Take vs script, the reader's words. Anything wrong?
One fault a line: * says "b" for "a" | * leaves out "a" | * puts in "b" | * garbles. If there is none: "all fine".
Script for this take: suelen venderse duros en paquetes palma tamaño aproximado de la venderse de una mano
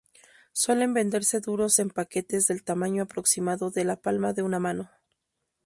* says "del" for "palma"
* says "palma" for "venderse"